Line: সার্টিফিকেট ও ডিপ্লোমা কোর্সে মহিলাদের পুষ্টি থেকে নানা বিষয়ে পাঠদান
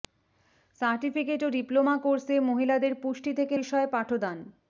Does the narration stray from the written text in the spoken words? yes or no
yes